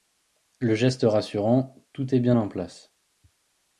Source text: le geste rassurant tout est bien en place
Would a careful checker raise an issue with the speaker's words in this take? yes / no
no